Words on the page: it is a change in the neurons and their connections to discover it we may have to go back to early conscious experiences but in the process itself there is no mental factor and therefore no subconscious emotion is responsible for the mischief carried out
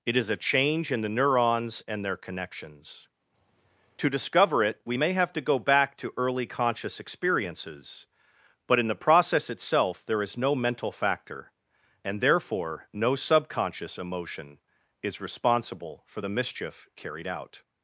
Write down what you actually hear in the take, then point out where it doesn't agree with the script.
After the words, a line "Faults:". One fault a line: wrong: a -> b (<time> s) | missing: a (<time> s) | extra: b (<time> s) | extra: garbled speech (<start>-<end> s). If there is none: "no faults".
it is a change in the neurons and their connections to discover it we may have to go back to early conscious experiences but in the process itself there is no mental factor and therefore no subconscious emotion is responsible for the mischief carried out
Faults:
no faults